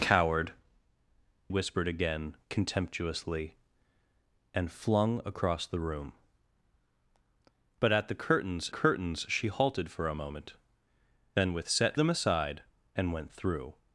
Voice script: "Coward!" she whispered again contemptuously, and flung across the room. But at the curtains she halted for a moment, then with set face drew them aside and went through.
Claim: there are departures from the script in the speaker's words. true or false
true